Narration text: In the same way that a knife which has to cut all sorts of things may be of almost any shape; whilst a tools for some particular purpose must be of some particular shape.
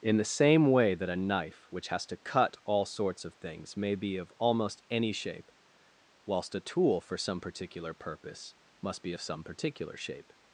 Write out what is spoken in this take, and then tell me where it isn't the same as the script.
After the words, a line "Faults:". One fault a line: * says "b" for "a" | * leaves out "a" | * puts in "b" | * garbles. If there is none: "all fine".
In the same way that a knife which has to cut all sorts of things may be of almost any shape; whilst a tool for some particular purpose must be of some particular shape.
Faults:
* says "tool" for "tools"